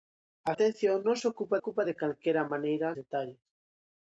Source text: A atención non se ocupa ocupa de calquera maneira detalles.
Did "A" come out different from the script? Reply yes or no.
no